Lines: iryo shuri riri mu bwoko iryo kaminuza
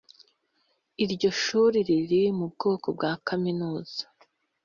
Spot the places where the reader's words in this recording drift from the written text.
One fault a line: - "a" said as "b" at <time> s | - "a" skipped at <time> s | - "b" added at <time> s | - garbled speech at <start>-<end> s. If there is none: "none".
- "iryo" said as "bwa" at 3.0 s